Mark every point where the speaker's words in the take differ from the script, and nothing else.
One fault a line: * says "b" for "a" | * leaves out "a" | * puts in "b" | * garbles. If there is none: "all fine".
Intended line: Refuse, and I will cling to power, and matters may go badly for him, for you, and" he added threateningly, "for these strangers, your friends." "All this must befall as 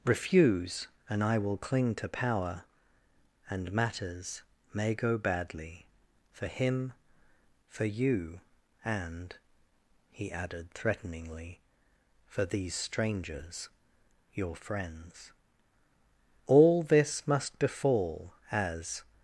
all fine